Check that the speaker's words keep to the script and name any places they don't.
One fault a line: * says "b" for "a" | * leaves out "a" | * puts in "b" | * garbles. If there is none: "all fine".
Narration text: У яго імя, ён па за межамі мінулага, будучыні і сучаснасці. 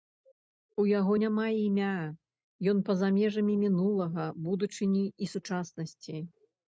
* puts in "няма"